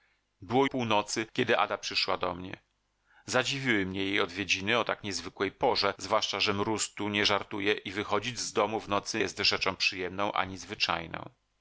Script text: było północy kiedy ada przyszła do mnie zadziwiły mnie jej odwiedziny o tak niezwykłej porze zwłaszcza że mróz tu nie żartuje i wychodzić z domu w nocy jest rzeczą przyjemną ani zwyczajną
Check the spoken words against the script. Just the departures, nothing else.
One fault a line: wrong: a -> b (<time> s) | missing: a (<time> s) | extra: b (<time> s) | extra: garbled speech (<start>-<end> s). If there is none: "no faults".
no faults